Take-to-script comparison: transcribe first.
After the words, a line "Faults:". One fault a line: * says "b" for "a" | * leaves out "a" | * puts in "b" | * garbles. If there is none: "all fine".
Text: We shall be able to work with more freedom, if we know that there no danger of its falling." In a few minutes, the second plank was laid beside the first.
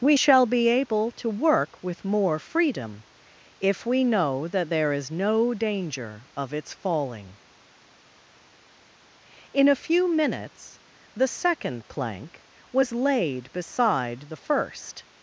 We shall be able to work with more freedom, if we know that there is no danger of its falling." In a few minutes, the second plank was laid beside the first.
Faults:
* puts in "is"